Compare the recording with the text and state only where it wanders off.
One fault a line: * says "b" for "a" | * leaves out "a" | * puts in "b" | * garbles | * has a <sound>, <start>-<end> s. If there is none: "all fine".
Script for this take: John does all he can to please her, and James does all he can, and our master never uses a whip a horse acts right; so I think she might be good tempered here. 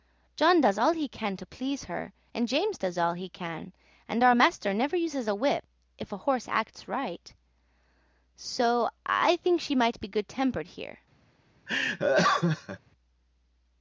* puts in "if"
* has a laugh, 11.7-12.8 s